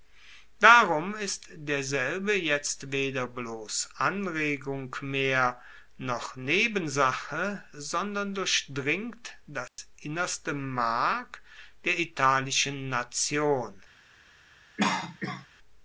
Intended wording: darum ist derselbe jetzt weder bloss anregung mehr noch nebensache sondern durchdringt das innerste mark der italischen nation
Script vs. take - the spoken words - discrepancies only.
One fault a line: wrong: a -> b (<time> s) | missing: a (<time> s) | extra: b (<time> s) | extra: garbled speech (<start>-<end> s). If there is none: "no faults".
no faults